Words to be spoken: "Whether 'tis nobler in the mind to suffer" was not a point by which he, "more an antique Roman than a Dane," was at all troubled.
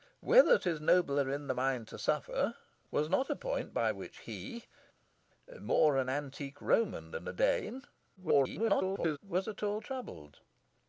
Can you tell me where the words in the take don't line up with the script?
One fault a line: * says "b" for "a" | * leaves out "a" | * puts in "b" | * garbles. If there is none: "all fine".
* garbles